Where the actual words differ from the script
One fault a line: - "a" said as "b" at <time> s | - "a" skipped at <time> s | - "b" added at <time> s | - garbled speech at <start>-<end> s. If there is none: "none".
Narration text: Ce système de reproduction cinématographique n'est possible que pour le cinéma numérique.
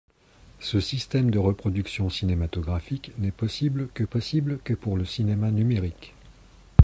- "possible que" added at 4.0 s